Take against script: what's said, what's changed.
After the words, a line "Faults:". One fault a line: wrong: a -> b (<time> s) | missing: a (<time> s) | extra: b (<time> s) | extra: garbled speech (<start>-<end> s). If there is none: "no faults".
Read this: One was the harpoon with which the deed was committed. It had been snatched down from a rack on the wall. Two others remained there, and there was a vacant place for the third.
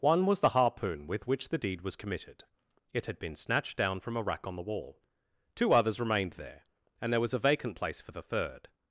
One was the harpoon with which the deed was committed. It had been snatched down from a rack on the wall. Two others remained there, and there was a vacant place for the third.
Faults:
no faults